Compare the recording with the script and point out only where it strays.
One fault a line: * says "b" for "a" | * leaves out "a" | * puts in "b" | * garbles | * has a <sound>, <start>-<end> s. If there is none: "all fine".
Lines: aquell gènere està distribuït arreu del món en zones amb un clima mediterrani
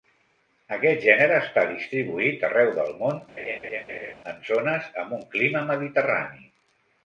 * says "aquest" for "aquell"
* has a laugh, 3.4-4.1 s